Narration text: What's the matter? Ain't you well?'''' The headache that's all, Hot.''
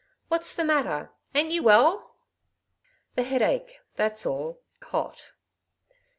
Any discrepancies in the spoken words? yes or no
no